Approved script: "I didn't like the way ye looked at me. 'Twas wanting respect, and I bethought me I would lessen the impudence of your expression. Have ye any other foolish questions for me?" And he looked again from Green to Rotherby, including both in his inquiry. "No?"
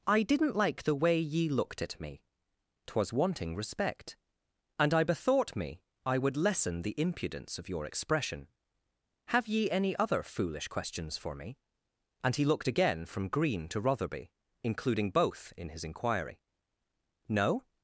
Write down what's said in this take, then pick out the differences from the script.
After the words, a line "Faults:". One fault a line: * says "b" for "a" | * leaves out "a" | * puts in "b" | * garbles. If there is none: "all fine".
"I didn't like the way ye looked at me. 'Twas wanting respect, and I bethought me I would lessen the impudence of your expression. Have ye any other foolish questions for me?" And he looked again from Green to Rotherby, including both in his inquiry. "No?"
Faults:
all fine